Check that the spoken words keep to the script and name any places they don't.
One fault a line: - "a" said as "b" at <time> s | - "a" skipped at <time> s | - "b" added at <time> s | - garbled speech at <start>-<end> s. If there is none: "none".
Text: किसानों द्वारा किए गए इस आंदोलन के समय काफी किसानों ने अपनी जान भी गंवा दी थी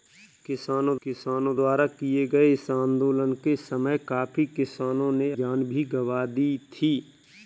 - "किसानों" added at 1.0 s
- "अपनी" skipped at 5.3 s